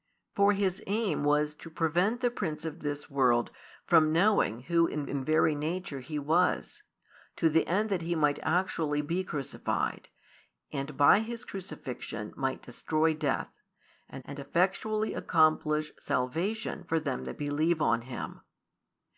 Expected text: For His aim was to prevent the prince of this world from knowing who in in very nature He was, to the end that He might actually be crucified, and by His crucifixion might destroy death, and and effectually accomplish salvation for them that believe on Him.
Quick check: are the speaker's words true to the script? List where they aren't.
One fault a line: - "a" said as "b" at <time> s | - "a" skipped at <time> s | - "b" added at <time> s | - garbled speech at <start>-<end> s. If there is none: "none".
none